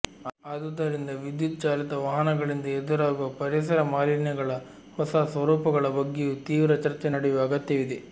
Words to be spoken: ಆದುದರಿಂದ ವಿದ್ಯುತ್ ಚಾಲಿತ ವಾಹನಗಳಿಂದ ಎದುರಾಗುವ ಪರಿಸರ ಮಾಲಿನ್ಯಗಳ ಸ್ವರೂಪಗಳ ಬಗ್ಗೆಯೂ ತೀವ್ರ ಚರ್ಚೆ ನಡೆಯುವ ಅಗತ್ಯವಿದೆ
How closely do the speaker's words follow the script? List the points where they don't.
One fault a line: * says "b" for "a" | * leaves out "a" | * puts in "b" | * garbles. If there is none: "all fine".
* puts in "ಹೊಸ"